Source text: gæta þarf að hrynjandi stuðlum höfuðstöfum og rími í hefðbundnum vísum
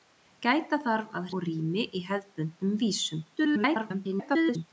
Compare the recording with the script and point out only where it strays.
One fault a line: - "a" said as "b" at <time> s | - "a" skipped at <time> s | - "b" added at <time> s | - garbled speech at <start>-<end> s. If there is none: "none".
- "hrynjandi stuðlum höfuðstöfum" skipped at 1.3 s
- garbled speech at 3.4-4.7 s